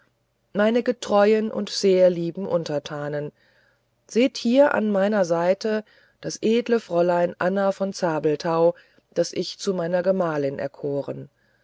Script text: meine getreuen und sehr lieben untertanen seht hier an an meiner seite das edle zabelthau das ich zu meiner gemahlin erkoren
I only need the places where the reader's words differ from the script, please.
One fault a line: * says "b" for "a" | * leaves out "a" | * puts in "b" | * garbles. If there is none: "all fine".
* leaves out "an"
* puts in "fräulein anna von"